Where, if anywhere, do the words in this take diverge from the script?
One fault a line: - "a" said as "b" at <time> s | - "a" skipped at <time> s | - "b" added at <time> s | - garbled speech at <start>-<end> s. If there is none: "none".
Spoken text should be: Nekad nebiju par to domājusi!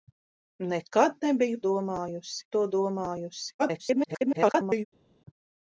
- "par" said as "domājusi" at 1.7 s
- garbled speech at 3.6-4.8 s